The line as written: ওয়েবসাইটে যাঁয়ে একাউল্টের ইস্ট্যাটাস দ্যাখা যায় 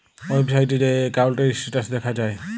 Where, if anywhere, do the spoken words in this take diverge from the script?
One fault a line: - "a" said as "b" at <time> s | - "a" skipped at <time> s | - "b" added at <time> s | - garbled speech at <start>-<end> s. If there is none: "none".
none